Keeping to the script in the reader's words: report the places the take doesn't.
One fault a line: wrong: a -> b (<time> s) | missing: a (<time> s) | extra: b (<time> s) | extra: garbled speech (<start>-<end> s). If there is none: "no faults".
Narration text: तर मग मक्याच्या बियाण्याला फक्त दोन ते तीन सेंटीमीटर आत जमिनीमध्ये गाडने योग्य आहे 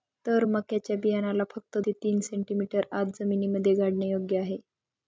missing: मग (0.5 s)
missing: दोन (1.8 s)